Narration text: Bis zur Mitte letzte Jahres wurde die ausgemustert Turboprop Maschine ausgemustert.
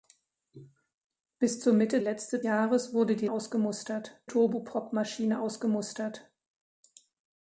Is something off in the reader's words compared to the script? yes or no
no